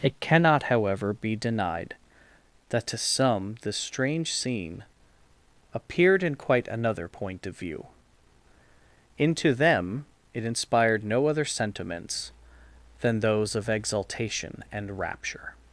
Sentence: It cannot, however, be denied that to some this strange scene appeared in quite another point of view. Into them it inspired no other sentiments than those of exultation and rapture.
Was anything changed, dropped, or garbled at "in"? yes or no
no